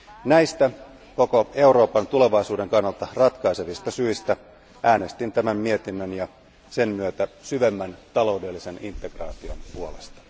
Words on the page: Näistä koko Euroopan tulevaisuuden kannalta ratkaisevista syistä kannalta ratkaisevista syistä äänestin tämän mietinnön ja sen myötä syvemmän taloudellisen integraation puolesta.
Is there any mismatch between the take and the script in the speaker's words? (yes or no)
yes